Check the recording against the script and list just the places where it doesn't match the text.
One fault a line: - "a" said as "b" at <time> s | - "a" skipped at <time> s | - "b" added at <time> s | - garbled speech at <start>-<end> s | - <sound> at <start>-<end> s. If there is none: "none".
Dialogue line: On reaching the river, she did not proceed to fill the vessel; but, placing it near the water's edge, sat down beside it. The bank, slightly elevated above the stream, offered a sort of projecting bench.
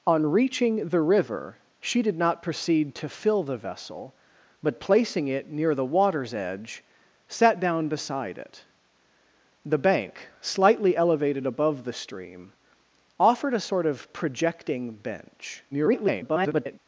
- garbled speech at 15.7-16.8 s